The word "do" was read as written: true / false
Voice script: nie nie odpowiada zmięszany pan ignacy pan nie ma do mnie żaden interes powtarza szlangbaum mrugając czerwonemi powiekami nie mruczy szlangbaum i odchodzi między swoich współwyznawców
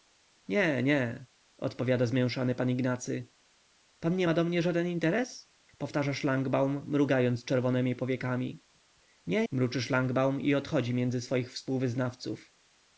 true